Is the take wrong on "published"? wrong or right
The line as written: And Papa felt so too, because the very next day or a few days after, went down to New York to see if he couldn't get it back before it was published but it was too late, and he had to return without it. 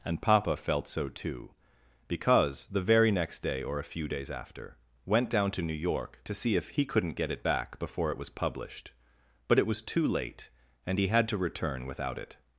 right